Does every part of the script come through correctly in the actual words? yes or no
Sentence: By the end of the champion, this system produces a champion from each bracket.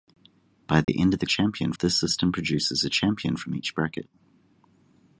yes